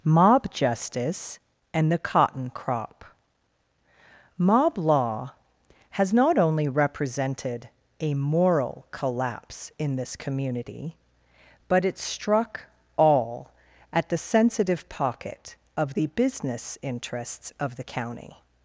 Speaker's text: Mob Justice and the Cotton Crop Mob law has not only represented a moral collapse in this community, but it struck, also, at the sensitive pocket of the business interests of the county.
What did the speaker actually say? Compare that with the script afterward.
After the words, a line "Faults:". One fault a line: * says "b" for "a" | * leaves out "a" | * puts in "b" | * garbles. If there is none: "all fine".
Mob Justice and the Cotton Crop Mob law has not only represented a moral collapse in this community, but it struck, all, at the sensitive pocket of the business interests of the county.
Faults:
* says "all" for "also"